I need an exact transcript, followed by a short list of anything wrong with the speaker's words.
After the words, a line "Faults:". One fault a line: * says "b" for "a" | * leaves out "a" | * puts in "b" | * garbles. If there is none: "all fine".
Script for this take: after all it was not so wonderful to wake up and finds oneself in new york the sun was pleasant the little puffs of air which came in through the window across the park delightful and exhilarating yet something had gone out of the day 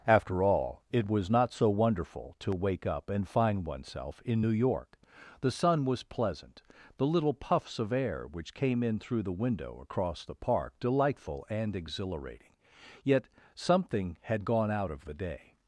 after all it was not so wonderful to wake up and find oneself in new york the sun was pleasant the little puffs of air which came in through the window across the park delightful and exhilarating yet something had gone out of the day
Faults:
* says "find" for "finds"